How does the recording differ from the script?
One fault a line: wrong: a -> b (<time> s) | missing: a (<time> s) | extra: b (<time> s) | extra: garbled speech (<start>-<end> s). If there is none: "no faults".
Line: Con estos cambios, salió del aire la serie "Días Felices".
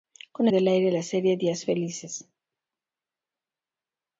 missing: estos cambios salió (0.5 s)